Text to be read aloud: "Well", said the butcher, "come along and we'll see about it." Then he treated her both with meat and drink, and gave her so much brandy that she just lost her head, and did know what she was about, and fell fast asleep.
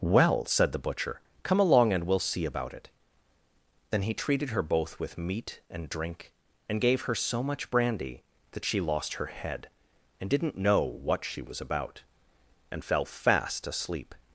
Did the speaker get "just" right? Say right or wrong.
wrong